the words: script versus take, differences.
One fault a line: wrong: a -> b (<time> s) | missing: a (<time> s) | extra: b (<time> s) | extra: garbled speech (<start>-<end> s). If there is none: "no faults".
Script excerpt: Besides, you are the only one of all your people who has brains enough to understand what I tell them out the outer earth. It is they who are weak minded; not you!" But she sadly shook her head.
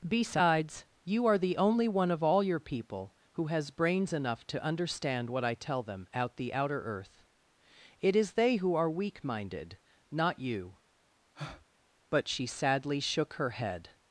no faults